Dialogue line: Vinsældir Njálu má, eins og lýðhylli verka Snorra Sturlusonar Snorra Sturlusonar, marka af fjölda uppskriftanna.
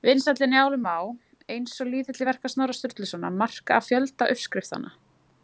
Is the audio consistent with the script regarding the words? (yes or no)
no